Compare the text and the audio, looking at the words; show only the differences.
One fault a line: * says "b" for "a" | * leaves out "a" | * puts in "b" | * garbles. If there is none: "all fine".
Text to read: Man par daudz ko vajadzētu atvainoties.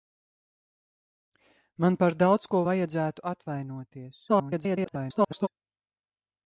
* garbles